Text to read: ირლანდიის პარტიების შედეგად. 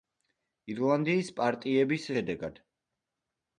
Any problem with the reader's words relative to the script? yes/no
no